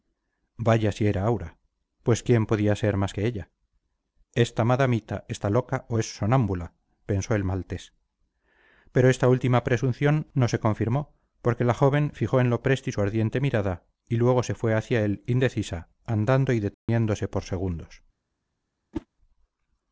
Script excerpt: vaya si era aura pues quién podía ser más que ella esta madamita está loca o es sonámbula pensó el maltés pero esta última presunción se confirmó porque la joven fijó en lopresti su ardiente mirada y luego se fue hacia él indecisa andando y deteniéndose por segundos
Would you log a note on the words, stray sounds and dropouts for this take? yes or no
yes